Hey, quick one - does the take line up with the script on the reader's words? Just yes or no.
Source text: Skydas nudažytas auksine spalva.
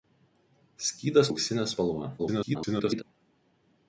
no